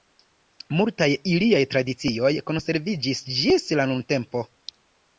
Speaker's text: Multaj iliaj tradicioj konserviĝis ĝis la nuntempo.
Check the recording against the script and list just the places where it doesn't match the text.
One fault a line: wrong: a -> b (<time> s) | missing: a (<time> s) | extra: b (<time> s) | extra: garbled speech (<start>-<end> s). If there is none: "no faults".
no faults